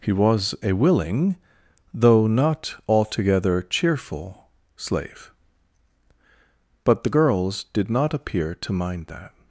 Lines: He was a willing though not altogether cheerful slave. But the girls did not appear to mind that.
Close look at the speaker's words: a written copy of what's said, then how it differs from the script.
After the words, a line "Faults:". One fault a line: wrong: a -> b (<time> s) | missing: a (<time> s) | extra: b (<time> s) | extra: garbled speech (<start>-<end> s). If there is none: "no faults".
He was a willing though not altogether cheerful slave. But the girls did not appear to mind that.
Faults:
no faults